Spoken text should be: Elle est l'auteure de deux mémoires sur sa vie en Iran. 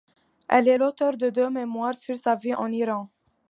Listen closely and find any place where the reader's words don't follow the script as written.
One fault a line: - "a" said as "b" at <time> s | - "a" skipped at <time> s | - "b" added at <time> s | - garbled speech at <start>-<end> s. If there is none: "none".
none